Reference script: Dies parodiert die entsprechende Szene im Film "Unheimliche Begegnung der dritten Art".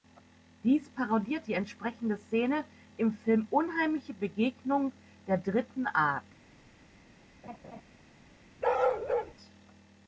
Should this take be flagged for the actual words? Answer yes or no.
no